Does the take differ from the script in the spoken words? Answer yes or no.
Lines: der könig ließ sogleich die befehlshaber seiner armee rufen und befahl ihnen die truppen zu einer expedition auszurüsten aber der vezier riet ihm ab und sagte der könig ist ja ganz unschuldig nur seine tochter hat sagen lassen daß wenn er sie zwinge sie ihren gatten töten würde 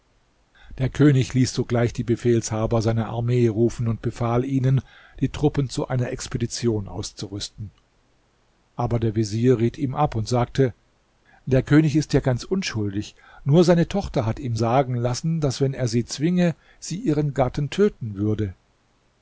yes